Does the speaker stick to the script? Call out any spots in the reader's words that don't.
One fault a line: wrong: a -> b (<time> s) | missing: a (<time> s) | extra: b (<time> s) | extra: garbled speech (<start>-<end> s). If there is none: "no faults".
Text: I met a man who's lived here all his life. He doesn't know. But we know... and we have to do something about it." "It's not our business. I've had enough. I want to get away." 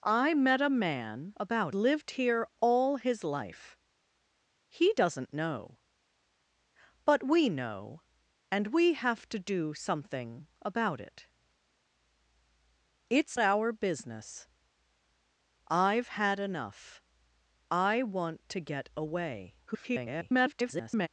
wrong: who's -> about (1.4 s)
missing: not (13.4 s)
extra: garbled speech (19.7-21.1 s)